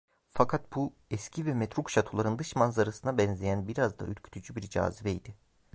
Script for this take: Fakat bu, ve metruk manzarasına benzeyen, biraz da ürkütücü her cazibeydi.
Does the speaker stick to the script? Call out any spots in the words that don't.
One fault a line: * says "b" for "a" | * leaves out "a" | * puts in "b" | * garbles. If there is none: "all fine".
* puts in "eski"
* puts in "şatoların dış"
* says "bir" for "her"